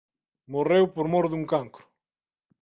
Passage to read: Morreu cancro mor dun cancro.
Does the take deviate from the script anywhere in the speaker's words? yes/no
yes